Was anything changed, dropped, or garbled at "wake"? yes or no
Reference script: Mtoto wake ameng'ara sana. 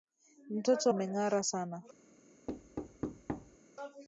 yes